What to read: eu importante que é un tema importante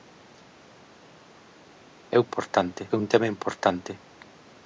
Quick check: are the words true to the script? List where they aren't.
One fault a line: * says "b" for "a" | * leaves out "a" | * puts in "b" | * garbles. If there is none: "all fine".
all fine